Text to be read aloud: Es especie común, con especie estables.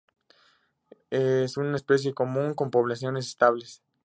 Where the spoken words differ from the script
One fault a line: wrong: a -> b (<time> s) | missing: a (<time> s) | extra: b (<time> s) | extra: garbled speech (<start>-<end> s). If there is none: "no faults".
extra: una (1.6 s)
wrong: especie -> poblaciones (2.7 s)